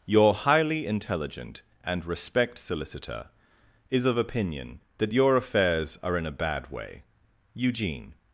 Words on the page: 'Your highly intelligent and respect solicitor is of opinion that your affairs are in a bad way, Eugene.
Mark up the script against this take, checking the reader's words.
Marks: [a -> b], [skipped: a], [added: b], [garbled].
'Your highly intelligent and respect solicitor is of opinion that your affairs are in a bad way, Eugene.